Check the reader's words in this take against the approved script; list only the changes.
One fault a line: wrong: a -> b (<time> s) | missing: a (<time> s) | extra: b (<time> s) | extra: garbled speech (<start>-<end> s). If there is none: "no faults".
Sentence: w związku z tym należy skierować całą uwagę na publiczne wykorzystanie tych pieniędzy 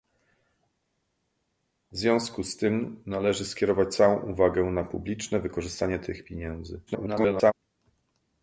extra: garbled speech (6.9-7.5 s)